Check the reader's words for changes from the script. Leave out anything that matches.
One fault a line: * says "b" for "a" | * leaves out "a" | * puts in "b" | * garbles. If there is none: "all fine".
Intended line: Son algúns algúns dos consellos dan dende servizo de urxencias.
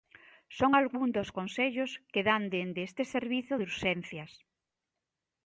* leaves out "algúns"
* puts in "que"
* puts in "este"